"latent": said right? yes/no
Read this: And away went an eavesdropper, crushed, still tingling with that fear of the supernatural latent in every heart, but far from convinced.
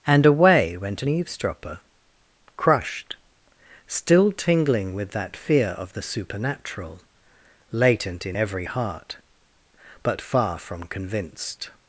yes